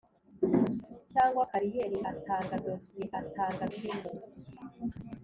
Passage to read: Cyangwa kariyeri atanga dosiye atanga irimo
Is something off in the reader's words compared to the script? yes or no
no